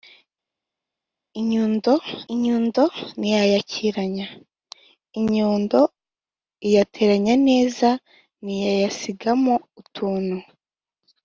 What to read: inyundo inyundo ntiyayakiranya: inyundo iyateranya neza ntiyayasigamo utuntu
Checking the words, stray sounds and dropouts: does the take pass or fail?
pass